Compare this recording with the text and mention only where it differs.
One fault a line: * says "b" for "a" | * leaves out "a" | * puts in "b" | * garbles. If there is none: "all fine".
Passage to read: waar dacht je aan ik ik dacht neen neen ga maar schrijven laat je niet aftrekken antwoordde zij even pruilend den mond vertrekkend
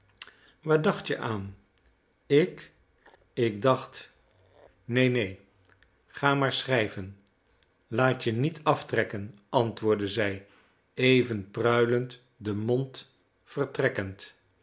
all fine